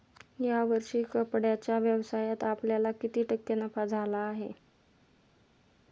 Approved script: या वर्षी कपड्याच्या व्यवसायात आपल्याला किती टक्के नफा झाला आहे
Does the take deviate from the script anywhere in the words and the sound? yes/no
no